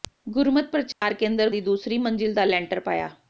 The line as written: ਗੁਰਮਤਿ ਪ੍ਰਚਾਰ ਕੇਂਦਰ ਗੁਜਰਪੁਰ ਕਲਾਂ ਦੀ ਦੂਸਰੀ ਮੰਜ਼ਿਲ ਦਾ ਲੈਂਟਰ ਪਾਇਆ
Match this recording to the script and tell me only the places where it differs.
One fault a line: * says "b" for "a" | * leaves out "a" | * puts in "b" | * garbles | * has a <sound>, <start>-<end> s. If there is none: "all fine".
* has a dropout, 0.9-1.0 s
* leaves out "ਗੁਜਰਪੁਰ ਕਲਾਂ"